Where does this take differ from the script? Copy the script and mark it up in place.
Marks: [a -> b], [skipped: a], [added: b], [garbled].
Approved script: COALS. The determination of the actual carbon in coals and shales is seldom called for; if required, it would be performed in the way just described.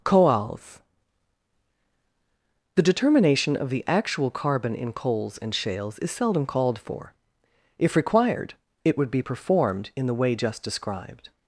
COALS. The determination of the actual carbon in coals and shales is seldom called for; if required, it would be performed in the way just described.